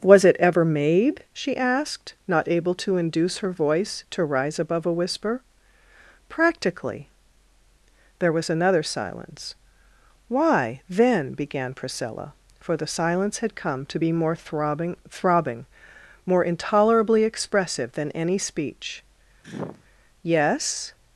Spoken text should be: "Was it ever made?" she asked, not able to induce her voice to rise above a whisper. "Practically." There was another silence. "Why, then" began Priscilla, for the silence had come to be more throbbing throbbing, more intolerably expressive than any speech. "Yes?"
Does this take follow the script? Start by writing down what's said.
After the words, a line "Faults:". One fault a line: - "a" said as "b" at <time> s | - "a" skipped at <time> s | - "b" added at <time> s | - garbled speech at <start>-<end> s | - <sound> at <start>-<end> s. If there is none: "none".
"Was it ever made?" she asked, not able to induce her voice to rise above a whisper. "Practically." There was another silence. "Why, then" began Priscilla, for the silence had come to be more throbbing throbbing, more intolerably expressive than any speech. "Yes?"
Faults:
- sneeze at 19.4-19.8 s